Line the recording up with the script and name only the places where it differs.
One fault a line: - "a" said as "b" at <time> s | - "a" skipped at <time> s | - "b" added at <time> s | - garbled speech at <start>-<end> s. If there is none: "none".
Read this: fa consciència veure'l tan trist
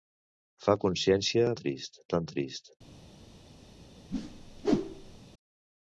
- "veure'l" said as "trist" at 1.6 s